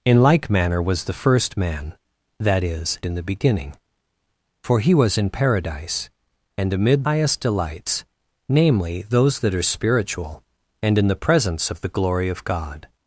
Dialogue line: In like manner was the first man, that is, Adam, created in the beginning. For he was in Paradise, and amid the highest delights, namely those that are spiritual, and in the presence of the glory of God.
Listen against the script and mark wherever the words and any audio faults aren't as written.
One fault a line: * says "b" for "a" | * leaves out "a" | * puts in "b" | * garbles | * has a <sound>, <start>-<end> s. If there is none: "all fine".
* leaves out "Adam created"
* leaves out "the"